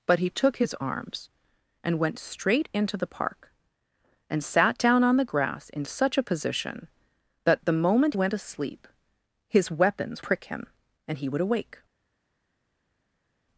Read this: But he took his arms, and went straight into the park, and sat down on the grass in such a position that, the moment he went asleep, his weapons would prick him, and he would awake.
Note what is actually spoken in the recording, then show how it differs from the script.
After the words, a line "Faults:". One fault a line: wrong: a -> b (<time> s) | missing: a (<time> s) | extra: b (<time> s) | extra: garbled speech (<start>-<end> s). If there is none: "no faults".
But he took his arms, and went straight into the park, and sat down on the grass in such a position that, the moment went asleep, his weapons prick him, and he would awake.
Faults:
missing: he (8.2 s)
missing: would (10.2 s)